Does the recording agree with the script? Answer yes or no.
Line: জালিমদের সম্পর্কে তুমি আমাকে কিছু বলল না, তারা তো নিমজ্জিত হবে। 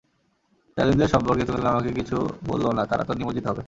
no